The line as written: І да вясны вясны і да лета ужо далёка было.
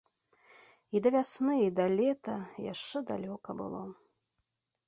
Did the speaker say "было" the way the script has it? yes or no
yes